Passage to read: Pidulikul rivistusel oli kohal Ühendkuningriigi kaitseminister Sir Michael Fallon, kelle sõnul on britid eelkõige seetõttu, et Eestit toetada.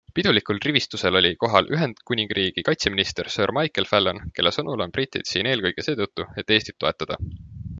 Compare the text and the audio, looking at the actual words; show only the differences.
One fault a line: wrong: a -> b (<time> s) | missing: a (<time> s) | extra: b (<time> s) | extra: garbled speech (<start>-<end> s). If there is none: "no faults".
extra: siin (5.3 s)